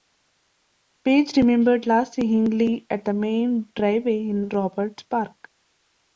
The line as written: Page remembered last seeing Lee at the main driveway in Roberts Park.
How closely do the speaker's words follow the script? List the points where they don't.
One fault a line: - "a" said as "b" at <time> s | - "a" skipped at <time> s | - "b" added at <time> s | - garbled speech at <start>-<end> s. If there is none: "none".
none